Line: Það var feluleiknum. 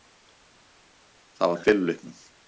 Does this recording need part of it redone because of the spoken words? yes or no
no